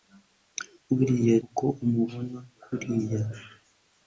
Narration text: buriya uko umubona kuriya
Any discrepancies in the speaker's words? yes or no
no